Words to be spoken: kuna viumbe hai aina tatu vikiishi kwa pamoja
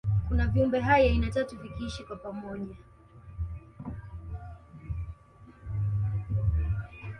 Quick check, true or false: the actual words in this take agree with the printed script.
true